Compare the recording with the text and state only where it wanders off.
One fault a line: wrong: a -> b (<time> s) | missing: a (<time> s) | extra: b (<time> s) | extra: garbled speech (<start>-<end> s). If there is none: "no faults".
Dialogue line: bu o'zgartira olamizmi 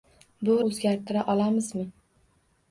no faults